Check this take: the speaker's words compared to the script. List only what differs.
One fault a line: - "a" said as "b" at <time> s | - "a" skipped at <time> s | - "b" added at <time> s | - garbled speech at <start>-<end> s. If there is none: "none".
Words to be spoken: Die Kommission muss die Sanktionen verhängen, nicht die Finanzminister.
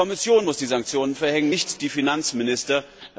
none